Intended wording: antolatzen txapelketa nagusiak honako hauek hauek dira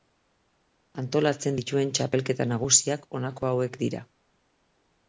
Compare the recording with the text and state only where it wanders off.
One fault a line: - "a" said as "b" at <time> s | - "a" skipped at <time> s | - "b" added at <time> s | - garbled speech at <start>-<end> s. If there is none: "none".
- "dituen" added at 1.6 s
- "hauek" skipped at 3.8 s